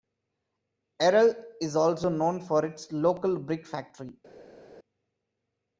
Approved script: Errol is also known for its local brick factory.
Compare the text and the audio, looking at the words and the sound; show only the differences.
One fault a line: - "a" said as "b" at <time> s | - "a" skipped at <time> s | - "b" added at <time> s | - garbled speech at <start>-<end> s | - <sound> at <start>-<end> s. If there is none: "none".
none